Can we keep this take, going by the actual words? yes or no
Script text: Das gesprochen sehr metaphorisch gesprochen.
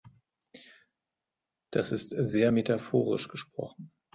no